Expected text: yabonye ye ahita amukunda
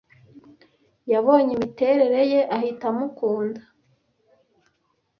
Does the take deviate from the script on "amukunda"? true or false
false